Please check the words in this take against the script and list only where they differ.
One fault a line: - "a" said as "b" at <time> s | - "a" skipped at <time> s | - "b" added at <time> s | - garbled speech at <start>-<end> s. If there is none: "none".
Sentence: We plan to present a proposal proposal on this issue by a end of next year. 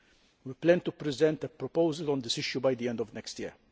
- "proposal" skipped at 2.1 s
- "a" said as "the" at 2.8 s